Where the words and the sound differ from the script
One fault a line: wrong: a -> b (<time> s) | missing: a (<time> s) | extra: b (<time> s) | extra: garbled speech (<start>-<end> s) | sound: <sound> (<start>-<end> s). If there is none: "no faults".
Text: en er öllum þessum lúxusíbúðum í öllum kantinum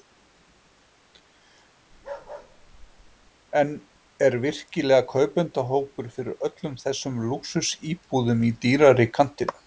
sound: bark (1.9-3.3 s)
extra: virkilega kaupendahópur fyrir (4.4 s)
wrong: öllum -> dýrari (8.7 s)